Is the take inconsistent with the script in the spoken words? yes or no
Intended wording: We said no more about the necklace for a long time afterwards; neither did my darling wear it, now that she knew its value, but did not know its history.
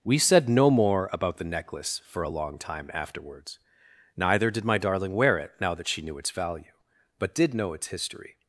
yes